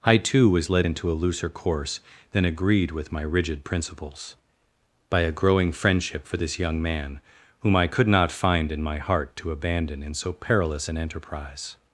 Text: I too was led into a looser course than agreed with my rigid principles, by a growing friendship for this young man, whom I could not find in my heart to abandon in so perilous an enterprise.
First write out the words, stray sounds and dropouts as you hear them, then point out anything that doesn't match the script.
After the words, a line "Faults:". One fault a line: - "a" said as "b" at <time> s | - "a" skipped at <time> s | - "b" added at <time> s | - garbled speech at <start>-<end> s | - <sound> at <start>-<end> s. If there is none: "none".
I too was led into a looser course than agreed with my rigid principles, by a growing friendship for this young man, whom I could not find in my heart to abandon in so perilous an enterprise.
Faults:
none